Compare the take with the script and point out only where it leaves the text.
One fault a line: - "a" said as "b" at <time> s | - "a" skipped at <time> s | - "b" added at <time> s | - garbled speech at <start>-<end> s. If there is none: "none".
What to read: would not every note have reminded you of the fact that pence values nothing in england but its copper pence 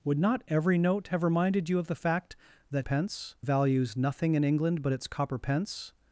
none